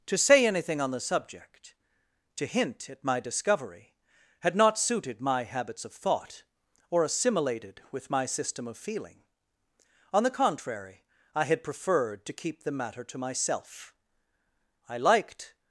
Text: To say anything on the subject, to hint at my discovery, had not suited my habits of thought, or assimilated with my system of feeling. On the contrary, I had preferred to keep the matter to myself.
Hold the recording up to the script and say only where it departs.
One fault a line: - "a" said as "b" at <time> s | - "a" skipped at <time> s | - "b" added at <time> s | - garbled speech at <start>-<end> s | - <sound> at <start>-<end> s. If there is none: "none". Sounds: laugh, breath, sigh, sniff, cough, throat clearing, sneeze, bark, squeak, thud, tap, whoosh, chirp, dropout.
- "I liked" added at 14.9 s